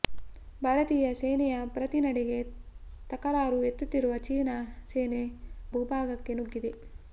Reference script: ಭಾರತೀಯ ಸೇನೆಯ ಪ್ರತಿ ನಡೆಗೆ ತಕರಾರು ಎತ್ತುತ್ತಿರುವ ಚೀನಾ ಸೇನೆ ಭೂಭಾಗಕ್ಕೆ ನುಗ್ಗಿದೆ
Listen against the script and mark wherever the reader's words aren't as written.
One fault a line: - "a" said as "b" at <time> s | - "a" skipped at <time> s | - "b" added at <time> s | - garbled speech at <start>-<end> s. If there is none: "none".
none